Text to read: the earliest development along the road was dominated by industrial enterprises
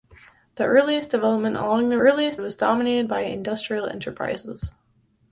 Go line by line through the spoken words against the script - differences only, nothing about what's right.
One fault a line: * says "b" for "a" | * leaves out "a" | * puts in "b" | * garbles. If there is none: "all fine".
* says "earliest" for "road"